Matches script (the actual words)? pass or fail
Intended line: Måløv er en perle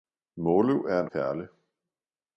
pass